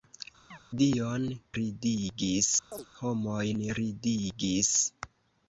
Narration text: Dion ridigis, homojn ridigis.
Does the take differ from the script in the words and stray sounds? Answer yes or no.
yes